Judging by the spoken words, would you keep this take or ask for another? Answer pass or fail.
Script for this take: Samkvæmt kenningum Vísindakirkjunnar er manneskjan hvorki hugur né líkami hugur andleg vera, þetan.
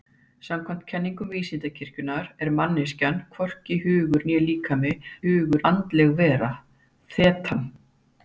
pass